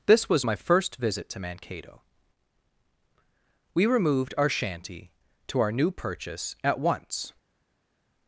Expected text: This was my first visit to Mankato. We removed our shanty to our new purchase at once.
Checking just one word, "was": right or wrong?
right